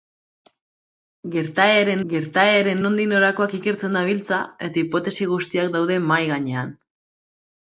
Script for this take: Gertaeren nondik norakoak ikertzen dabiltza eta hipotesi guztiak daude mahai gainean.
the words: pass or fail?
fail